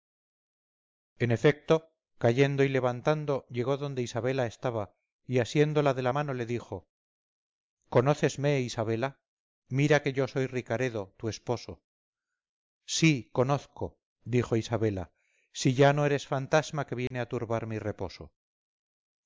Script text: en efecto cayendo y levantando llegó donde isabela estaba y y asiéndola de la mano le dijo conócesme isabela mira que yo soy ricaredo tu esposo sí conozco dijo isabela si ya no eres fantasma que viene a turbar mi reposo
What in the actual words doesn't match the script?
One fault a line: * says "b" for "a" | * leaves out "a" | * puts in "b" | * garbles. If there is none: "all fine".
* leaves out "y"